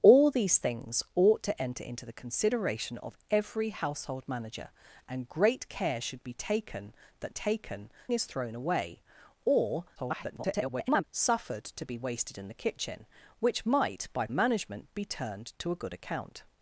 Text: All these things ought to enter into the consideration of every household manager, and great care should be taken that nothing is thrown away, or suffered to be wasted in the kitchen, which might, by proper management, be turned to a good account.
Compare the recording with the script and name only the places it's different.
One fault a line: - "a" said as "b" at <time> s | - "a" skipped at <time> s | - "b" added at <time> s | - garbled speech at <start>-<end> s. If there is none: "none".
- "nothing" said as "taken" at 7.3 s
- garbled speech at 10.0-11.0 s
- "proper" skipped at 14.3 s